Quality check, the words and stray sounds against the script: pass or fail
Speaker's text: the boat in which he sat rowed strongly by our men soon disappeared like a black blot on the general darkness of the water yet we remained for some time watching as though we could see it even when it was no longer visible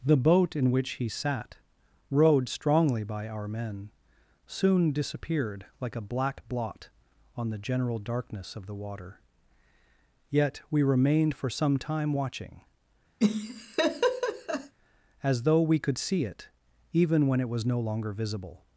fail